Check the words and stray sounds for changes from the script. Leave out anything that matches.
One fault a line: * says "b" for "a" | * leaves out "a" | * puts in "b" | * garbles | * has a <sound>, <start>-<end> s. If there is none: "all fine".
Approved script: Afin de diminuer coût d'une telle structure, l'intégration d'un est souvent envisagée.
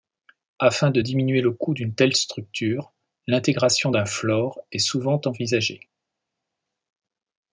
* puts in "le"
* puts in "floor"